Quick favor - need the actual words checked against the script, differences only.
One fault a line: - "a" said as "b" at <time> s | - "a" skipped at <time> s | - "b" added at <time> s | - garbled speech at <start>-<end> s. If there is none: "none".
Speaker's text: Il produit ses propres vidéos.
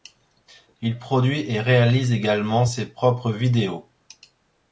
- "et réalise également" added at 1.4 s